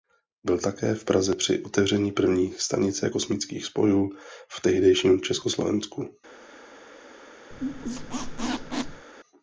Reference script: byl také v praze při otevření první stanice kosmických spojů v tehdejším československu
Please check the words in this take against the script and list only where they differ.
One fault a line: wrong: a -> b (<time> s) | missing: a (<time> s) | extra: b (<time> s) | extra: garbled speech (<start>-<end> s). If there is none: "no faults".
no faults